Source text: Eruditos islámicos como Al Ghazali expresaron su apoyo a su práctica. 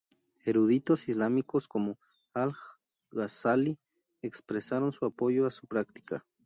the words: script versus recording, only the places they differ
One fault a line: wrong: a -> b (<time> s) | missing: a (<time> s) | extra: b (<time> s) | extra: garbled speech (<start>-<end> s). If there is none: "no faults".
no faults